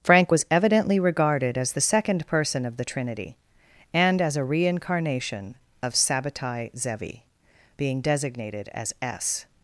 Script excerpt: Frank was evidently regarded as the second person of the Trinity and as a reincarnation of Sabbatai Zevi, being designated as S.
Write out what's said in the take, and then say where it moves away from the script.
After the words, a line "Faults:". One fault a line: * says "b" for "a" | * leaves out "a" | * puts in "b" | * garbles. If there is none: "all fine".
Frank was evidently regarded as the second person of the Trinity and as a reincarnation of Sabbatai Zevi, being designated as S.
Faults:
all fine